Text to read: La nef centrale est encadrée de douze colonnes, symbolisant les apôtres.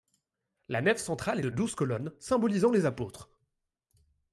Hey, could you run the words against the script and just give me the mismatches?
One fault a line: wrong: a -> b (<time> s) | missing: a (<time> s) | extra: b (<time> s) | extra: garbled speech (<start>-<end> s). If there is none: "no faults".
missing: est encadrée (1.4 s)